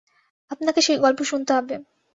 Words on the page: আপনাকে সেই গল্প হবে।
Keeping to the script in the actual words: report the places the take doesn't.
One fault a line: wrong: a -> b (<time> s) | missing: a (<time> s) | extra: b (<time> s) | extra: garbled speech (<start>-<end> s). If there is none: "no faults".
extra: শুনতে (1.2 s)